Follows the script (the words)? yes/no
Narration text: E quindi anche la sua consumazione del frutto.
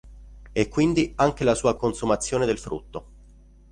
yes